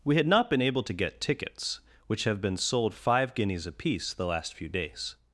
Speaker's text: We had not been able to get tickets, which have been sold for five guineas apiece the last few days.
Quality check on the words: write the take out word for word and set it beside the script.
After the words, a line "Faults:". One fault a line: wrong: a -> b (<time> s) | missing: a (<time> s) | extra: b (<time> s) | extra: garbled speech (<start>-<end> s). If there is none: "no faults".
We had not been able to get tickets, which have been sold five guineas apiece the last few days.
Faults:
missing: for (3.0 s)